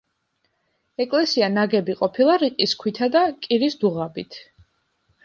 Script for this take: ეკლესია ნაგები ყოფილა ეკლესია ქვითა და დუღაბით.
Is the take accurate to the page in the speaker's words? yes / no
no